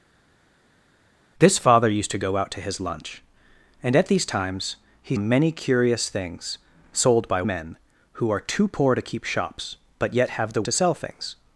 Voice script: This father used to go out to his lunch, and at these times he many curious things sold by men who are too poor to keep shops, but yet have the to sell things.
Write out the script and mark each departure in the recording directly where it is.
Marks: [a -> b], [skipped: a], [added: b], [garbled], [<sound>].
This father used to go out to his lunch, and at these times he many curious things sold by men who are too poor to keep shops, but yet have the to sell things.